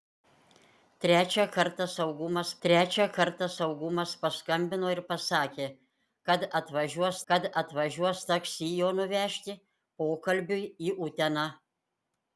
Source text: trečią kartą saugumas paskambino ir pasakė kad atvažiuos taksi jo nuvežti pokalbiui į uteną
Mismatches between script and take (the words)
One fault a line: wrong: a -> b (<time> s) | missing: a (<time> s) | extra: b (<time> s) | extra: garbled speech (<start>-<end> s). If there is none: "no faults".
extra: trečią kartą saugumas (2.6 s)
extra: kad atvažiuos (7.3 s)